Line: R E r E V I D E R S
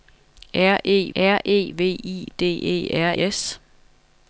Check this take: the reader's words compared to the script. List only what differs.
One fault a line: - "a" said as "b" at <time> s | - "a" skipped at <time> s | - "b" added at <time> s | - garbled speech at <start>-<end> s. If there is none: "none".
none